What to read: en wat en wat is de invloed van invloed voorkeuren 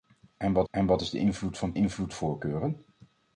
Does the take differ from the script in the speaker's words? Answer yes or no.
no